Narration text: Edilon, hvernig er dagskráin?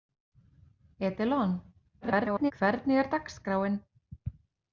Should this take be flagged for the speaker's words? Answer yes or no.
yes